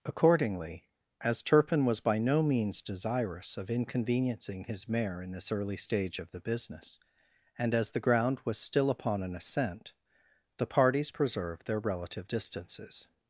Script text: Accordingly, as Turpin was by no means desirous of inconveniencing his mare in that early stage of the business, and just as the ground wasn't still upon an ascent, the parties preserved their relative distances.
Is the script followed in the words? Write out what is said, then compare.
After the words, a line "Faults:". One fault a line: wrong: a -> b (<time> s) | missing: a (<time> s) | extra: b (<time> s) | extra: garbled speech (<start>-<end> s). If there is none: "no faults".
Accordingly, as Turpin was by no means desirous of inconveniencing his mare in this early stage of the business, and as the ground was still upon an ascent, the parties preserved their relative distances.
Faults:
wrong: that -> this (5.3 s)
missing: just (7.7 s)
wrong: wasn't -> was (8.5 s)